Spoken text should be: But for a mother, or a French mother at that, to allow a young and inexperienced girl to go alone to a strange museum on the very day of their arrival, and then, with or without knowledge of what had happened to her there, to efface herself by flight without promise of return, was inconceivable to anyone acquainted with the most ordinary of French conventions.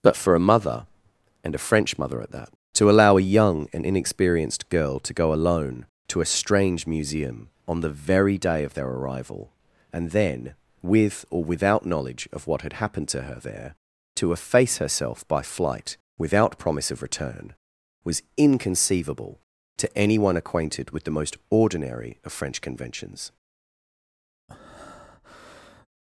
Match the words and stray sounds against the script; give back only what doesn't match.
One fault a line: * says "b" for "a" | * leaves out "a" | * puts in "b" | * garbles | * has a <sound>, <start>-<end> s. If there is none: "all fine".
* says "and" for "or"
* has a breath, 24.5-25.9 s